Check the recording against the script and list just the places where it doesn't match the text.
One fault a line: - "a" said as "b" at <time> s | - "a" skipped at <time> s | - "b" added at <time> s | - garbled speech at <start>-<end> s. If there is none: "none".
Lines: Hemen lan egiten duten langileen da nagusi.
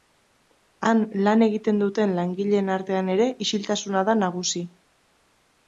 - "Hemen" said as "Han" at 0.9 s
- "artean ere isiltasuna" added at 2.8 s